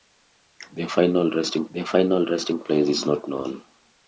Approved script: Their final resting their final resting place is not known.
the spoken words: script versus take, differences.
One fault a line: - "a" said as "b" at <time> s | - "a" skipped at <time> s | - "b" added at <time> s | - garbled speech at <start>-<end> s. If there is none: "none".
none